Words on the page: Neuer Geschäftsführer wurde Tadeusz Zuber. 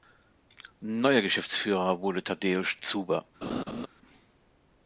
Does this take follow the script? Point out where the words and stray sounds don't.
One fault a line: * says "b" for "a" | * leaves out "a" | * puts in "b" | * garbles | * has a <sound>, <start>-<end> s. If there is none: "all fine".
* has a laugh, 3.4-3.9 s